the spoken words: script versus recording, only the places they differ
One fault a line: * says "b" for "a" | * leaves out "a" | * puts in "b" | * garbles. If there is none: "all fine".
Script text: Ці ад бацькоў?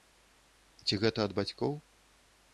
* puts in "гэта"